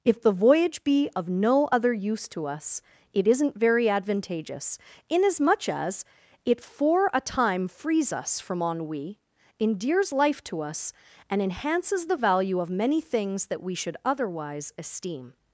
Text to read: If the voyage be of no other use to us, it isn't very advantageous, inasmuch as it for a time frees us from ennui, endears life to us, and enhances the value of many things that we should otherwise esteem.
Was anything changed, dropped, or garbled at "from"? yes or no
no